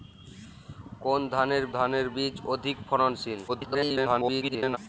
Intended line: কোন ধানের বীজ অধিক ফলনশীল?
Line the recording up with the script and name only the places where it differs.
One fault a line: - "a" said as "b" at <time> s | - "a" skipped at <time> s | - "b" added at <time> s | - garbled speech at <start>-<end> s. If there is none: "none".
- "ধানের" added at 1.7 s
- garbled speech at 3.5-4.8 s